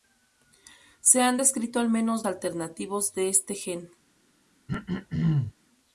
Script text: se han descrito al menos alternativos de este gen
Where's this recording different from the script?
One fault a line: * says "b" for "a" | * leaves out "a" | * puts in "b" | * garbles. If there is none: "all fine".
all fine